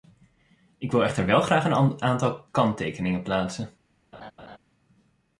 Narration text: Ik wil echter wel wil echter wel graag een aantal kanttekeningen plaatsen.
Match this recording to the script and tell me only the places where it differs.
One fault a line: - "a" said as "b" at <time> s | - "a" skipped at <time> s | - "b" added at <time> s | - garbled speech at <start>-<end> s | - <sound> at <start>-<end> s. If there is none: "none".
- "wil echter wel" skipped at 1.4 s
- laugh at 4.1-4.6 s